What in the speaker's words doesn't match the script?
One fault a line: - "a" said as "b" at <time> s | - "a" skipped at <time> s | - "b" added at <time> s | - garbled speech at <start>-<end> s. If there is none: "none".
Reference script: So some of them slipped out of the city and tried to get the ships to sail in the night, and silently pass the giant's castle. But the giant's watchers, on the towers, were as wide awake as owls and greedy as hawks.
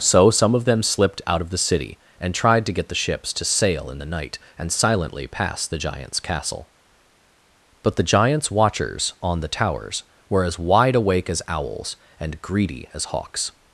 none